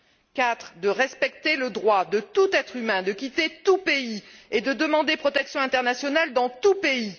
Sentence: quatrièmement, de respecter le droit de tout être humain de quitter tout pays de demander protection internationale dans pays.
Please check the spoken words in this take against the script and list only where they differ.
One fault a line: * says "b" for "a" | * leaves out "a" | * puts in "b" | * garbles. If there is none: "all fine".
* puts in "et"
* puts in "tout"